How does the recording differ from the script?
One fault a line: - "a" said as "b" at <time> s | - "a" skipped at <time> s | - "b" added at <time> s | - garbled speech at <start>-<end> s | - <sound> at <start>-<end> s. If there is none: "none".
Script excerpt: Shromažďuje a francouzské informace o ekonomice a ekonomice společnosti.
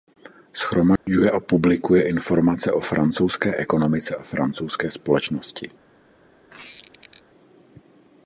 - dropout at 1.0-1.1 s
- "francouzské" said as "publikuje" at 1.4 s
- "francouzské" added at 2.8 s
- "ekonomice" said as "francouzské" at 4.2 s
- squeak at 6.5-7.2 s